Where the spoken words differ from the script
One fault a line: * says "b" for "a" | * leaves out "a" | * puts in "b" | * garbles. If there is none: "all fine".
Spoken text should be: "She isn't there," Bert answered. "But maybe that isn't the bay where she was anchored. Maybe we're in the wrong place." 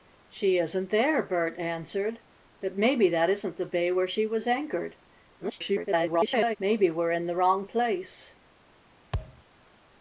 * garbles